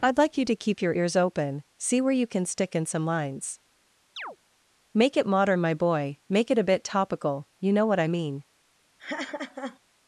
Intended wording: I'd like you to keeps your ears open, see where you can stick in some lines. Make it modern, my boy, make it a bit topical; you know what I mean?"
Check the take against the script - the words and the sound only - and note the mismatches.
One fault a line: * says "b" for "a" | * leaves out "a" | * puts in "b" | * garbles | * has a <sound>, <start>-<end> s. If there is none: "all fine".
* says "keep" for "keeps"
* has a chirp, 4.2-4.4 s
* has a laugh, 9.0-9.8 s